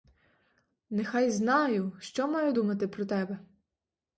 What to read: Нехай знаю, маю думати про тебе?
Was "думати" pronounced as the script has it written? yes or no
yes